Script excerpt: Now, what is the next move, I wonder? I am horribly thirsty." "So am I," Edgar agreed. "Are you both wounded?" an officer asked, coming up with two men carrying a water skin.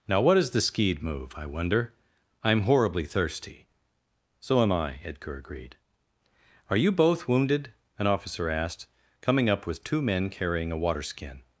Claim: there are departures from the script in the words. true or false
true